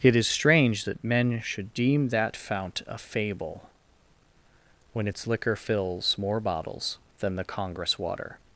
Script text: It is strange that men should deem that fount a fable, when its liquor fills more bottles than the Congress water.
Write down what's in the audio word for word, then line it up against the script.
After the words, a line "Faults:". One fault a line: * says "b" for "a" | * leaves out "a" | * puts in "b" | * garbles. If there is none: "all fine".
It is strange that men should deem that fount a fable, when its liquor fills more bottles than the Congress water.
Faults:
all fine